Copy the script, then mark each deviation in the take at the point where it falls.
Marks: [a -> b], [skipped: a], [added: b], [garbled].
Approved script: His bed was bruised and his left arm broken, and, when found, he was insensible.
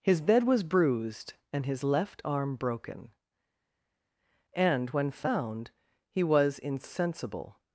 His bed was bruised and his left arm broken, and, when found, he was insensible.